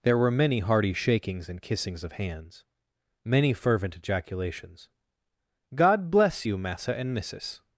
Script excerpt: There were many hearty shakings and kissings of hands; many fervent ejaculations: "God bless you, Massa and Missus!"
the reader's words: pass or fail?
pass